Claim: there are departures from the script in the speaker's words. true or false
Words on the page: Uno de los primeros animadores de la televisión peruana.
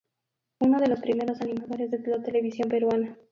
false